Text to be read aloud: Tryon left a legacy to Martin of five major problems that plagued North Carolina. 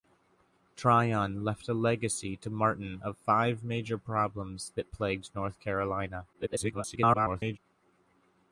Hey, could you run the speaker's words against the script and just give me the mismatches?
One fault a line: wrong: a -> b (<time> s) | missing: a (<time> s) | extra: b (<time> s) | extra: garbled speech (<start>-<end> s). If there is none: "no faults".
extra: garbled speech (6.3-7.6 s)